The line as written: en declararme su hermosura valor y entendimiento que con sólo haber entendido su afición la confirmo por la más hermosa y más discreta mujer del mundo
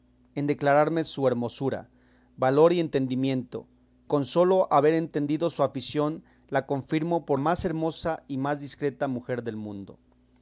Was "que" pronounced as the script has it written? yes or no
no